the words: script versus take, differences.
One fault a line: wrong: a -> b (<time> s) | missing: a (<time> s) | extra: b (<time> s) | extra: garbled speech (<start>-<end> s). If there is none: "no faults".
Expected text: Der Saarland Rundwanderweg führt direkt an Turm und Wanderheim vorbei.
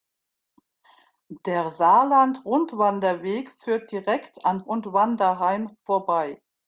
missing: Turm (4.7 s)